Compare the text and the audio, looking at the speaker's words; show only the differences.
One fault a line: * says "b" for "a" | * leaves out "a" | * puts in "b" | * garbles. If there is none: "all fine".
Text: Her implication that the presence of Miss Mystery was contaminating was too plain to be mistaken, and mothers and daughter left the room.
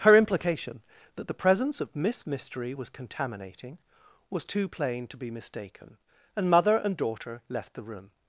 * says "mother" for "mothers"